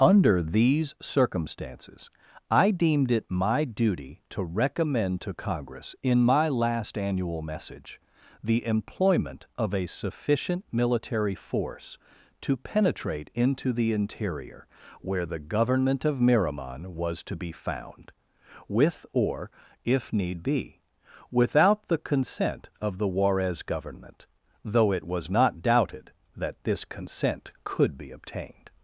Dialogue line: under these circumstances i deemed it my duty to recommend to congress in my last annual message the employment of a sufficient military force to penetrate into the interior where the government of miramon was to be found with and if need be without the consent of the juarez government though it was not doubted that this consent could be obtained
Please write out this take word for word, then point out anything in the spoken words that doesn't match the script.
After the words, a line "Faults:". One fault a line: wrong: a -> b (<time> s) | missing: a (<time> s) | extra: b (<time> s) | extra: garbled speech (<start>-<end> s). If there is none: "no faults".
under these circumstances i deemed it my duty to recommend to congress in my last annual message the employment of a sufficient military force to penetrate into the interior where the government of miramon was to be found with or if need be without the consent of the juarez government though it was not doubted that this consent could be obtained
Faults:
wrong: and -> or (19.1 s)